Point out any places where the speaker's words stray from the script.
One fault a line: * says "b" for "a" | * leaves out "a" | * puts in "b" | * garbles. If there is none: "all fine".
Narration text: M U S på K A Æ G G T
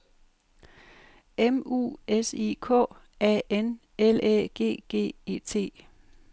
* says "I" for "på"
* puts in "N L"
* puts in "E"